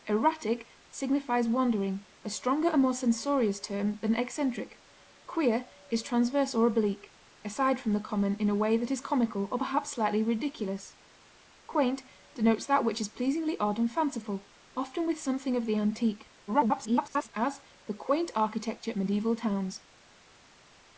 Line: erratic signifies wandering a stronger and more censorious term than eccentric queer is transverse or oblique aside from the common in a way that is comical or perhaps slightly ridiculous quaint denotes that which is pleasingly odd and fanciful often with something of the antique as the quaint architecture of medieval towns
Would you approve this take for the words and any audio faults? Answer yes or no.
no